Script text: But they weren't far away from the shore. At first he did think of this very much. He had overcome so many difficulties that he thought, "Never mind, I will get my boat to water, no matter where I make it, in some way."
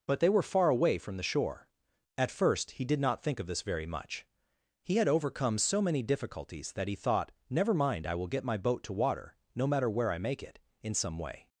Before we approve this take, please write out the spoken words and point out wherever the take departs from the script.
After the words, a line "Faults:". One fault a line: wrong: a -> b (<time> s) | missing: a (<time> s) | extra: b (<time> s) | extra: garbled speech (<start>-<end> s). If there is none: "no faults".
But they were far away from the shore. At first he did not think of this very much. He had overcome so many difficulties that he thought, "Never mind, I will get my boat to water, no matter where I make it, in some way."
Faults:
wrong: weren't -> were (0.3 s)
extra: not (3.0 s)